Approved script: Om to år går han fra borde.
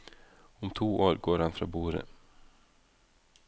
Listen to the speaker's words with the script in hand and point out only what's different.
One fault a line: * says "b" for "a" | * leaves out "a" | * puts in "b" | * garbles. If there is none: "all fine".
all fine